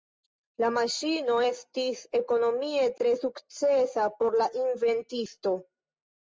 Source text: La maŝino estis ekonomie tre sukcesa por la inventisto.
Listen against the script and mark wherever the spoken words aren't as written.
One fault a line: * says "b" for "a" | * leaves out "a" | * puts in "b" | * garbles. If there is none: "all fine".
all fine